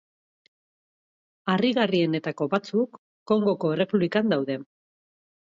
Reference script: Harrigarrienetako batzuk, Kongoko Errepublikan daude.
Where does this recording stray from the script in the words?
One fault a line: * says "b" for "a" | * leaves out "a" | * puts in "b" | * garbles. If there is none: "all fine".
all fine